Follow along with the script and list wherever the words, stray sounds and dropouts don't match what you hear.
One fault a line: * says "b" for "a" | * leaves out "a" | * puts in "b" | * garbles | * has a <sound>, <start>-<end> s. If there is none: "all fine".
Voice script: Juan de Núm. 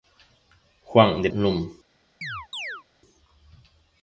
* has a chirp, 2.2-2.8 s